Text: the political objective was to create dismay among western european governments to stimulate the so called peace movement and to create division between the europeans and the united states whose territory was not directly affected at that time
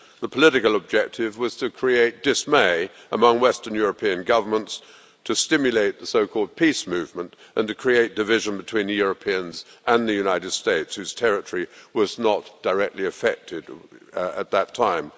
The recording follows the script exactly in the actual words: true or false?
true